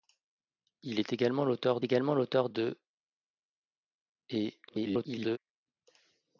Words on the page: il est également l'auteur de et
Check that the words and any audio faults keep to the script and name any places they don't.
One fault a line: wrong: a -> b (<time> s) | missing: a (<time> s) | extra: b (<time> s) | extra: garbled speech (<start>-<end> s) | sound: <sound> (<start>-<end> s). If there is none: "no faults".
extra: également l'auteur (1.8 s)
extra: garbled speech (4.7-5.4 s)